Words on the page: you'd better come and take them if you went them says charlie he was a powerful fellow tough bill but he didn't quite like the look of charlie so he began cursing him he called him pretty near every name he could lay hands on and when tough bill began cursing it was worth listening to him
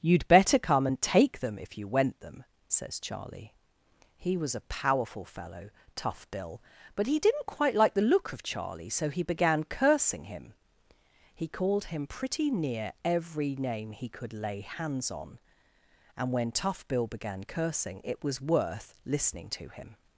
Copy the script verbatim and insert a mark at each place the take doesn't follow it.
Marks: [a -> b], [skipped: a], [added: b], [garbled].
you'd better come and take them if you went them says charlie he was a powerful fellow tough bill but he didn't quite like the look of charlie so he began cursing him he called him pretty near every name he could lay hands on and when tough bill began cursing it was worth listening to him